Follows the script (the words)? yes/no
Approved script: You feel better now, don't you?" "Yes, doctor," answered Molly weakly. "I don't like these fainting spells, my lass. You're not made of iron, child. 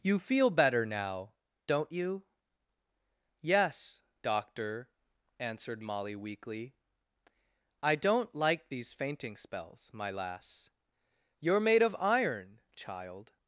no